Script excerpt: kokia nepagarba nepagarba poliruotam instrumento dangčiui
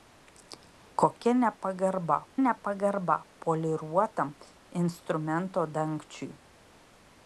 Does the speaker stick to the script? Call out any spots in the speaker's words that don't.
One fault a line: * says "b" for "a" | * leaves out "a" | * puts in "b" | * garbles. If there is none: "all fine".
all fine